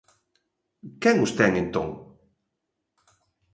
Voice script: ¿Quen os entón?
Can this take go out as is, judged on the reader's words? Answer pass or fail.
fail